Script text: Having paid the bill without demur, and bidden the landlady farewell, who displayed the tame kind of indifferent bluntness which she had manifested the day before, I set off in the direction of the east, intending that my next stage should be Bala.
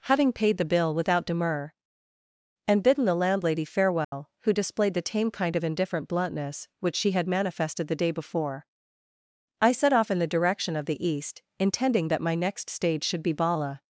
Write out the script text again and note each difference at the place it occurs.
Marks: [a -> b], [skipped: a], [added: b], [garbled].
Having paid the bill without demur, and bidden the landlady farewell, who displayed the tame kind of indifferent bluntness which she had manifested the day before, I set off in the direction of the east, intending that my next stage should be Bala.